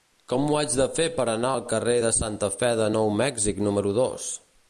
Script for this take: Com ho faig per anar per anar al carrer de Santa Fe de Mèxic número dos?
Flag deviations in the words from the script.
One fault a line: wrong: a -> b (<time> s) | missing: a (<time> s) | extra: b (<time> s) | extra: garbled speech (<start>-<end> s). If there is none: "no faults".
missing: per anar (1.5 s)
extra: Nou (2.9 s)